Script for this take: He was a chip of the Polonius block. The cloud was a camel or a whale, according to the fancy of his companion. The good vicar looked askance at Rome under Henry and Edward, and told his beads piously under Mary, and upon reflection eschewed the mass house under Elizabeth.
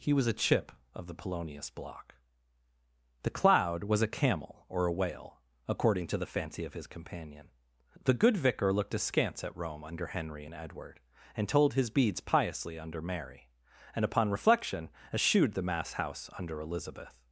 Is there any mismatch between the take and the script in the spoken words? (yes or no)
no